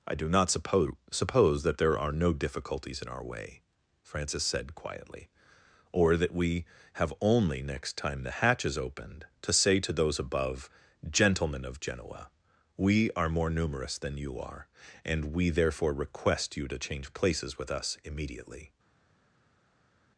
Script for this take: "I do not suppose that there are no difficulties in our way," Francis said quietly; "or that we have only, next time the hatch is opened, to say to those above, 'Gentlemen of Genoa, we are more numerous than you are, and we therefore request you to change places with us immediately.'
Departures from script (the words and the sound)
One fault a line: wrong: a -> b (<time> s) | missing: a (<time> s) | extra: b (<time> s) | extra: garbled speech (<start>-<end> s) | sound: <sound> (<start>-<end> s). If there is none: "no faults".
extra: suppose (1.1 s)